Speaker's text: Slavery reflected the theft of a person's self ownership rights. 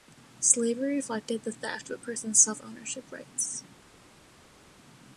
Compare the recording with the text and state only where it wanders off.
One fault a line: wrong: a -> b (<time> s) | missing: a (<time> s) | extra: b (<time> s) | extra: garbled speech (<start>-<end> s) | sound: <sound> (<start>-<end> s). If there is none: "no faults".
no faults